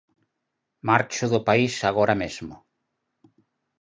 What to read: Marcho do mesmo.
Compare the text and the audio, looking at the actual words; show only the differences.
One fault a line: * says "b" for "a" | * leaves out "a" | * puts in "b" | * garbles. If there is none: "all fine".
* puts in "país agora"